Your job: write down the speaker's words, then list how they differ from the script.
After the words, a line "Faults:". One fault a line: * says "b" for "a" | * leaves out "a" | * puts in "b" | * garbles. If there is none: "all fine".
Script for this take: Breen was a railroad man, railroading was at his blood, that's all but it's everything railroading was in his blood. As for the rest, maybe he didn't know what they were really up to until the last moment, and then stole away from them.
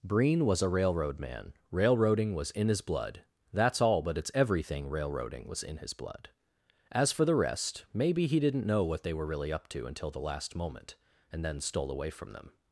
Breen was a railroad man, railroading was in his blood, that's all but it's everything railroading was in his blood. As for the rest, maybe he didn't know what they were really up to until the last moment, and then stole away from them.
Faults:
* says "in" for "at"